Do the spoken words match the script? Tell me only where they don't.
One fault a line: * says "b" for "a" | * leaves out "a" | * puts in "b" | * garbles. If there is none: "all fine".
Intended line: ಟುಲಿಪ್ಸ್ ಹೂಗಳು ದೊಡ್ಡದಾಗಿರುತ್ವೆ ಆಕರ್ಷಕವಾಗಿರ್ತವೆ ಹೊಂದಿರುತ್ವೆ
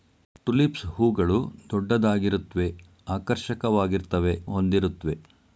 all fine